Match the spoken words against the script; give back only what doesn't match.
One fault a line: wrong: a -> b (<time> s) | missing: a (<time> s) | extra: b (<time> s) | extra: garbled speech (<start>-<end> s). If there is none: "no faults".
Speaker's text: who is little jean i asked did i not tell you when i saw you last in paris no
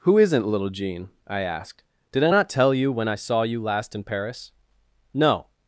wrong: is -> isn't (0.2 s)